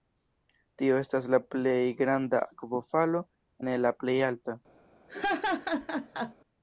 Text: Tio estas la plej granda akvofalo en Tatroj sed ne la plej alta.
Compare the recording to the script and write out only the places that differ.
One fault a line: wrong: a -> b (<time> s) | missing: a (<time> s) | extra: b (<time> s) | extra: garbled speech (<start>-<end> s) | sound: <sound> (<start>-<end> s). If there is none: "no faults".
missing: en Tatroj sed (3.2 s)
sound: laugh (5.1-6.3 s)